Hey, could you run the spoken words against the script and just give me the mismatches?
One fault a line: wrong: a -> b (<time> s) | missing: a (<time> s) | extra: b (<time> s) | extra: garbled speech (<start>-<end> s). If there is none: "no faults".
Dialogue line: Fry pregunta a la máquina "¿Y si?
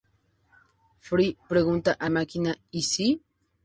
missing: la (2.1 s)